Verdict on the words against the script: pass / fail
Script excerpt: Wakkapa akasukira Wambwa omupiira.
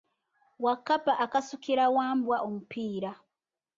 pass